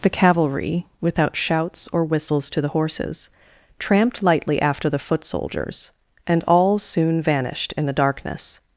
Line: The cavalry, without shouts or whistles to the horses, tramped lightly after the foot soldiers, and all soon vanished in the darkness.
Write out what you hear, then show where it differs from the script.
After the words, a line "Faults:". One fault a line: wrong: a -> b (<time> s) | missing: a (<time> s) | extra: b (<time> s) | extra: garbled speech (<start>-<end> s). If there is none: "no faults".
The cavalry, without shouts or whistles to the horses, tramped lightly after the foot soldiers, and all soon vanished in the darkness.
Faults:
no faults